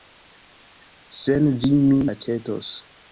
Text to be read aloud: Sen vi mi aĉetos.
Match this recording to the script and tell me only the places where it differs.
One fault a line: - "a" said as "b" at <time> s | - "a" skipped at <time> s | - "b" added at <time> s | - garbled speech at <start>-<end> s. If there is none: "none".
none